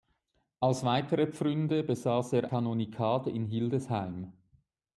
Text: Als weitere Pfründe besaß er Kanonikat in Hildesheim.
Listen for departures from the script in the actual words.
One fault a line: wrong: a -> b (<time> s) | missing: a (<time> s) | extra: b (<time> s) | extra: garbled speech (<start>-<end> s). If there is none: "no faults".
no faults